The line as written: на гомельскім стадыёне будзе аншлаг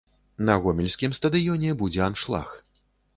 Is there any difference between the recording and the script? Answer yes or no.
no